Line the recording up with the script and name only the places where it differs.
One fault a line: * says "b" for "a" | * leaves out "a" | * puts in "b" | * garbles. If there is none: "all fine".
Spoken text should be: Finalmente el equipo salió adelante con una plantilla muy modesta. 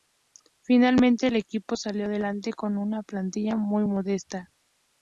all fine